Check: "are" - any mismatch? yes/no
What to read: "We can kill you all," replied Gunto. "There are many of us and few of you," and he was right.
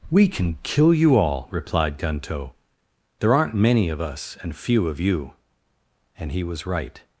yes